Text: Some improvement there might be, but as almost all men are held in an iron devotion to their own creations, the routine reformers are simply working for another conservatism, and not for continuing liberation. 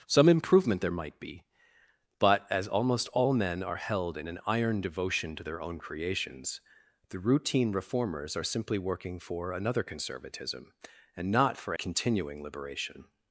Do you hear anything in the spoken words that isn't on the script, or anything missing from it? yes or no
no